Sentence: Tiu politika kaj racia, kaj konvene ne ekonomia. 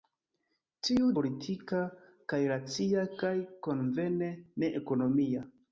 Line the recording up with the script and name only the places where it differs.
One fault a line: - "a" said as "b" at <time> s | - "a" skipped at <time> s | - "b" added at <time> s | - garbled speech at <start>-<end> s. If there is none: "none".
none